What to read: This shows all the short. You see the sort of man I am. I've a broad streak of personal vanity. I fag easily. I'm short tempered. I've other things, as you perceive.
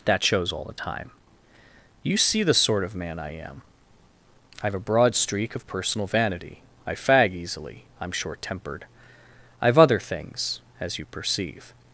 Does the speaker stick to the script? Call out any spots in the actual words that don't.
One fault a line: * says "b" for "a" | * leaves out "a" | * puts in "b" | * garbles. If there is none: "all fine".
* says "That" for "This"
* says "time" for "short"